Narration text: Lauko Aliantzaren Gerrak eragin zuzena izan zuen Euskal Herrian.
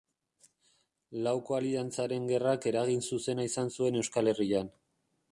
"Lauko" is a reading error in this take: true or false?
false